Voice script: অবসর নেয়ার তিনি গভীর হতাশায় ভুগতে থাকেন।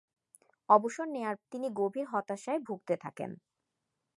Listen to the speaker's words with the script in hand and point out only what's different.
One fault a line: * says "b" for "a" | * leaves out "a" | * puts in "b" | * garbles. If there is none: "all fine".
all fine